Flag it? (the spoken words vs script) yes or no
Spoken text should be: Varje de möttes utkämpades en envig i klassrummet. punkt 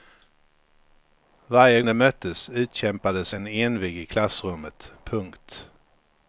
no